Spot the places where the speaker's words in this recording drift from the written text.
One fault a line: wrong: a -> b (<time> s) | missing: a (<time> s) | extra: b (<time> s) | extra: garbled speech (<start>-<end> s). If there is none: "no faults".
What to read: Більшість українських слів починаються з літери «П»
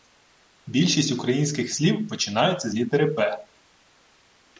no faults